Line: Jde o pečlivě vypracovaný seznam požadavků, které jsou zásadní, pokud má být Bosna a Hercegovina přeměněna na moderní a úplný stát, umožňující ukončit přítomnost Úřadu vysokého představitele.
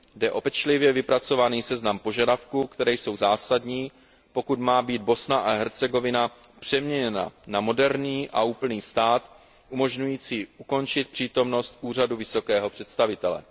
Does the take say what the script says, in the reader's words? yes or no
yes